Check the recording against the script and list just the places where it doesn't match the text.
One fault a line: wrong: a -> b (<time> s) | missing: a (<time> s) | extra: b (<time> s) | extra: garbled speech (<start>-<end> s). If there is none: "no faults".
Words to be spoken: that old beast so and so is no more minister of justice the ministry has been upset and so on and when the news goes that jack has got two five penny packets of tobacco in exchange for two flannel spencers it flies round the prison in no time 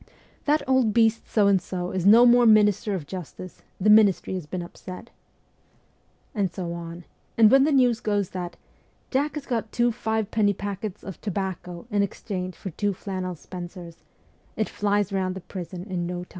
no faults